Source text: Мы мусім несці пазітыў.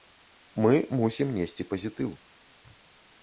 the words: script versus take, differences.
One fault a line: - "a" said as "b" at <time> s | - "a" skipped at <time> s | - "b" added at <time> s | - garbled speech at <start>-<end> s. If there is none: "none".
none